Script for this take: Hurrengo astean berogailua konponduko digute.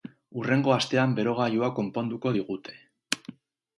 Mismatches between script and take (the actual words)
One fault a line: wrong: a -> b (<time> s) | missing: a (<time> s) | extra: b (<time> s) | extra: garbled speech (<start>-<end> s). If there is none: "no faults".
no faults